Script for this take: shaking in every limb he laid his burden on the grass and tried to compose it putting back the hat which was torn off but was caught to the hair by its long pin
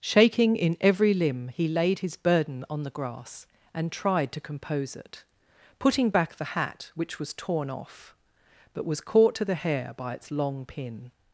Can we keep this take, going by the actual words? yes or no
yes